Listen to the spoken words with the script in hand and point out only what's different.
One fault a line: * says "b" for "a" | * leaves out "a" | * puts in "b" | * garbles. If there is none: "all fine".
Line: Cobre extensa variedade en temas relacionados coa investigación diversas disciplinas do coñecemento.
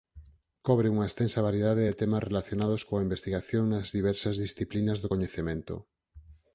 * puts in "unha"
* says "de" for "en"
* puts in "nas"